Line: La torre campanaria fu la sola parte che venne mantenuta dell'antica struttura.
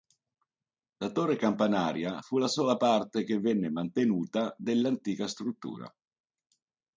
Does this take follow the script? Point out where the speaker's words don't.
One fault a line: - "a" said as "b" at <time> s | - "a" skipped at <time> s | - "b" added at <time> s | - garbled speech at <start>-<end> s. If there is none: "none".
none